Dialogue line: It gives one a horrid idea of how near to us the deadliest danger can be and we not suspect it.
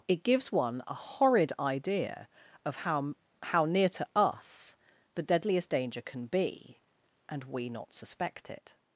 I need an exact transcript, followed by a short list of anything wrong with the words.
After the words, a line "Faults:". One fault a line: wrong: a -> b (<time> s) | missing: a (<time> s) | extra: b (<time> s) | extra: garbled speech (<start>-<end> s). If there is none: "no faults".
It gives one a horrid idea of how how near to us the deadliest danger can be and we not suspect it.
Faults:
extra: how (3.4 s)